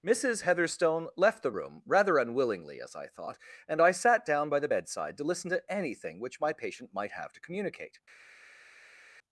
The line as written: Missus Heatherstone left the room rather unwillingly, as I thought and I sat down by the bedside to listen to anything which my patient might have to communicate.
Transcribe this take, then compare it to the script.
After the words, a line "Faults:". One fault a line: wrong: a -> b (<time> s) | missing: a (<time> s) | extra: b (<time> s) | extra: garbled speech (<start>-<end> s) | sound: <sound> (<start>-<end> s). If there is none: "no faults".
Missus Heatherstone left the room rather unwillingly, as I thought and I sat down by the bedside to listen to anything which my patient might have to communicate.
Faults:
no faults